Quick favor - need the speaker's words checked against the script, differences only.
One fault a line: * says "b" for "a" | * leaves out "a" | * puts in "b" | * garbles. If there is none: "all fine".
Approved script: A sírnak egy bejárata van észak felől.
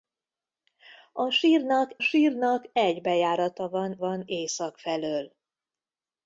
* puts in "sírnak"
* puts in "van"